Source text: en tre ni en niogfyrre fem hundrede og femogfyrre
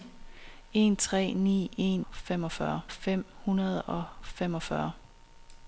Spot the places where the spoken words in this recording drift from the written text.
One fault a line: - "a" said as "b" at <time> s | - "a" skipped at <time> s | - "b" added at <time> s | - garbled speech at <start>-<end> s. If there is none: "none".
- "niogfyrre" said as "femogfyrre" at 2.1 s